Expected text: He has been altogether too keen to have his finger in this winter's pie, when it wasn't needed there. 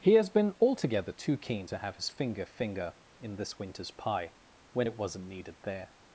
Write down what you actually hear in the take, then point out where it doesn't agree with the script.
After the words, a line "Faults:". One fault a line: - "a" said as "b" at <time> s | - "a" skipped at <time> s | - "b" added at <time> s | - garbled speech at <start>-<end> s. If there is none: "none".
He has been altogether too keen to have his finger finger in this winter's pie, when it wasn't needed there.
Faults:
- "finger" added at 2.5 s